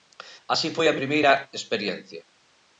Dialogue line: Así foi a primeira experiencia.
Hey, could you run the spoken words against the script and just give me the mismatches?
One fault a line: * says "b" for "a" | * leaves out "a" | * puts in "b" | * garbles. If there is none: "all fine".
all fine